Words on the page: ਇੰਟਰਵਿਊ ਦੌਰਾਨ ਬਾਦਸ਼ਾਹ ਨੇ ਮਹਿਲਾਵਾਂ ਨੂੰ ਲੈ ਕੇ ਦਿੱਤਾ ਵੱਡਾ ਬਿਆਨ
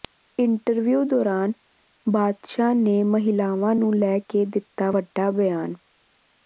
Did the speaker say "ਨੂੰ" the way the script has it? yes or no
yes